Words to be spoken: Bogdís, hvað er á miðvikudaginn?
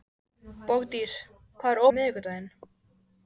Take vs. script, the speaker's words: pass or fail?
pass